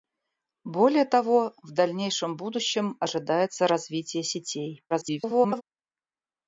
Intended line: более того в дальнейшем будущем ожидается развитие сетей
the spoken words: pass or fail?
fail